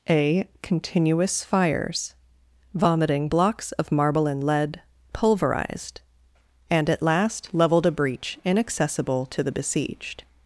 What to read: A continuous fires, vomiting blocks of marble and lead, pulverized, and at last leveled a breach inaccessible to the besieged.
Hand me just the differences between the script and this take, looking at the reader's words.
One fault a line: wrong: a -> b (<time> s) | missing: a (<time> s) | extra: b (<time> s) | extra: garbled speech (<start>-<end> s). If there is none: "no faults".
no faults